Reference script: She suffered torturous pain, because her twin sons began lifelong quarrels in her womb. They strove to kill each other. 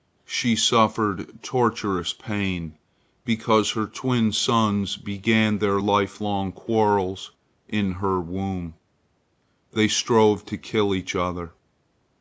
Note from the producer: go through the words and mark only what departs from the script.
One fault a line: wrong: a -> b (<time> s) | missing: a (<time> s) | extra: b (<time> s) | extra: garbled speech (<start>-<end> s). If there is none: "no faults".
extra: their (5.6 s)